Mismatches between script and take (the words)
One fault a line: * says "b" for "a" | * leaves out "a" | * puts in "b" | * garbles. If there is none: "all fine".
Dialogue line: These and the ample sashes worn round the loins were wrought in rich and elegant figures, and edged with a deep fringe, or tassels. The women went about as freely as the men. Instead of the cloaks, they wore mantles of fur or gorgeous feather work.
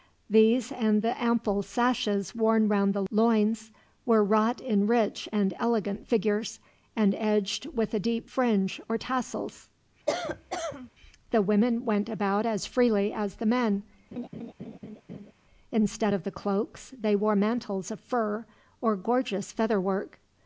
all fine